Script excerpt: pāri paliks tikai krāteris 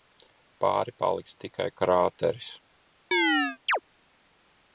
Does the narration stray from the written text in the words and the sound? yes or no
yes